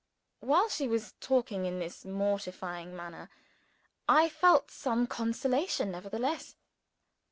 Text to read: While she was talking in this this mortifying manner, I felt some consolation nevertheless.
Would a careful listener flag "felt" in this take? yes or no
no